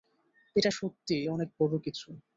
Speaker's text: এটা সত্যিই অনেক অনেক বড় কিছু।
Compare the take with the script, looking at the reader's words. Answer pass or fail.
fail